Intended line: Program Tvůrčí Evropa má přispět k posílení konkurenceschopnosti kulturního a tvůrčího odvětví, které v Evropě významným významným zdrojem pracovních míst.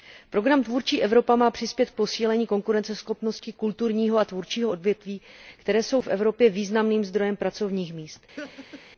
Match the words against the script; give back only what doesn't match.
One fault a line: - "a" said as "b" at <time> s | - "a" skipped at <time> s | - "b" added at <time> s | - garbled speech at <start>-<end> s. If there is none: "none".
- "jsou" added at 5.8 s
- "významným" skipped at 7.0 s